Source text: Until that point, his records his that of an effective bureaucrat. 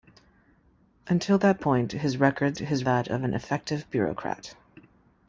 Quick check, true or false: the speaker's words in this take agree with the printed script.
true